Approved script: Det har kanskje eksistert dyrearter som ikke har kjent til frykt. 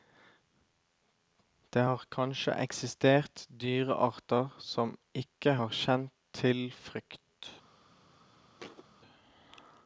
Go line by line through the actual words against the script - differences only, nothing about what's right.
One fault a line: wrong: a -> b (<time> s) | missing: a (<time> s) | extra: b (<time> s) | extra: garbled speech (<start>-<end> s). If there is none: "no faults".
no faults